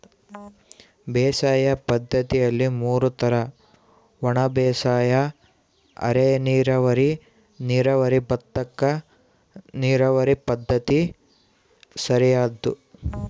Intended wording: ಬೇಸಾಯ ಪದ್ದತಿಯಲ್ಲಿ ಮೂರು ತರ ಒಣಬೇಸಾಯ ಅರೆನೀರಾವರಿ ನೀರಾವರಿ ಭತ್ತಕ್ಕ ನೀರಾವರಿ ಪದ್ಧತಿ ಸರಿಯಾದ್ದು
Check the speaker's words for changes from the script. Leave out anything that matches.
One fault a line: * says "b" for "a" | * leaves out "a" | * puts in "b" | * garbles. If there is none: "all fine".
all fine